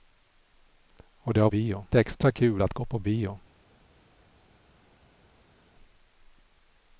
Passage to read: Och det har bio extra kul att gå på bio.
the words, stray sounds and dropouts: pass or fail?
pass